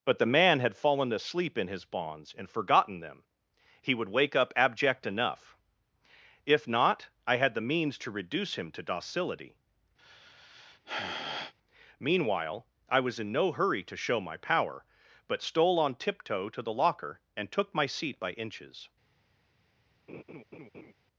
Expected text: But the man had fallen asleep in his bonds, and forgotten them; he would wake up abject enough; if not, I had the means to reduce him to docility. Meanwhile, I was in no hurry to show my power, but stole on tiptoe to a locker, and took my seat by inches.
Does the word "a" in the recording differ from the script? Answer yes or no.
yes